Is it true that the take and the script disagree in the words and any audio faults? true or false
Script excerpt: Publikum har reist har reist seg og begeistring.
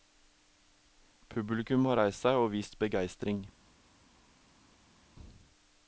true